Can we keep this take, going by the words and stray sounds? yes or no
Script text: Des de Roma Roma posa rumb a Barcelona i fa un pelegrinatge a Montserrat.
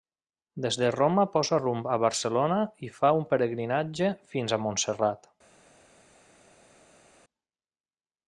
no